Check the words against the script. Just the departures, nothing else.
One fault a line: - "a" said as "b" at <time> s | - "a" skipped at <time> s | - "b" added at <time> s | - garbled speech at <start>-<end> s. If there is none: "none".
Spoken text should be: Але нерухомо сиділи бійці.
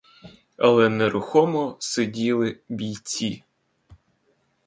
none